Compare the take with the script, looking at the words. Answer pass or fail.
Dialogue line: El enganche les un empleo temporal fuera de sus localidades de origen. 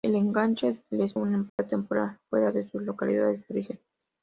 pass